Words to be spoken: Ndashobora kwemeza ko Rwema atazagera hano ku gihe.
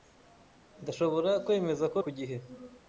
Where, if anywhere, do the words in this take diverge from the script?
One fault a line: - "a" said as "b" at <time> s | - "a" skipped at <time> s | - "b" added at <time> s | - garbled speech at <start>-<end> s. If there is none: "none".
- "Rwema atazagera hano" skipped at 2.0 s